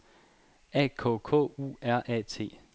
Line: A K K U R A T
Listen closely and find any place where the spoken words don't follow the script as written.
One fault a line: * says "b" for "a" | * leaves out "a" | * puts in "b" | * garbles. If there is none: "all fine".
all fine